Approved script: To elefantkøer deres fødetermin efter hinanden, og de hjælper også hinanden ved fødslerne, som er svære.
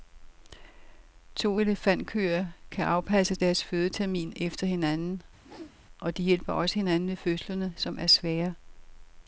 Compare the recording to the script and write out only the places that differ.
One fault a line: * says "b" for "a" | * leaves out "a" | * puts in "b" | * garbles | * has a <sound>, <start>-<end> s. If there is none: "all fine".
* puts in "kan afpasse"
* has a whoosh, 5.4-5.8 s